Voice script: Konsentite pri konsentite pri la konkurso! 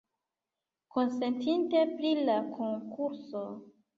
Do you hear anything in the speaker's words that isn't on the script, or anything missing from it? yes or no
yes